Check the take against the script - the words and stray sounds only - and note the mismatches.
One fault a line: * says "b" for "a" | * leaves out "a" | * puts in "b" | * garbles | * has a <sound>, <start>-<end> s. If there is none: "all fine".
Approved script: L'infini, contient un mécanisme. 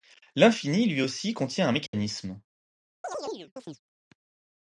* puts in "lui aussi"
* has a dropout, 1.9-1.9 s
* has a chirp, 3.0-3.8 s